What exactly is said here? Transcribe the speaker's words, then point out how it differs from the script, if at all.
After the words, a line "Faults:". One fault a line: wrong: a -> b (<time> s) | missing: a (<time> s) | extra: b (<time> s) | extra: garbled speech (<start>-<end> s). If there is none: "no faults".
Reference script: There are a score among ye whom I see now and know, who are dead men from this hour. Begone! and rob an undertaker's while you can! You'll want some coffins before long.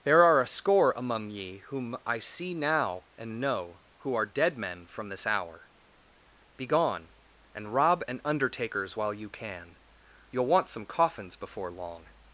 There are a score among ye whom I see now and know, who are dead men from this hour. Begone! and rob an undertaker's while you can! You'll want some coffins before long.
Faults:
no faults